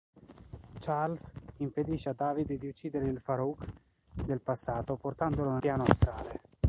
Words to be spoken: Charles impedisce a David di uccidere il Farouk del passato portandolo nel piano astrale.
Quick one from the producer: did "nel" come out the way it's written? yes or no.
no